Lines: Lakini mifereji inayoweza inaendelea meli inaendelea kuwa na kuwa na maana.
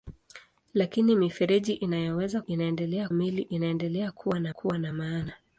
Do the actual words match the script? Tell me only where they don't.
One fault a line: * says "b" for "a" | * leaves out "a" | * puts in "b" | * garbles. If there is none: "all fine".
all fine